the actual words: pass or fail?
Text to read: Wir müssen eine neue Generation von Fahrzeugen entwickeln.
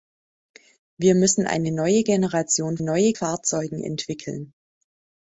fail